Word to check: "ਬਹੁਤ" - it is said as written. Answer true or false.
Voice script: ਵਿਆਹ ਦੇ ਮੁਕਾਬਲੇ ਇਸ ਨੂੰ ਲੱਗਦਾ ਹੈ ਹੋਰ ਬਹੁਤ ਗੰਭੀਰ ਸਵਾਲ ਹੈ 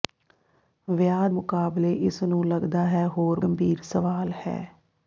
false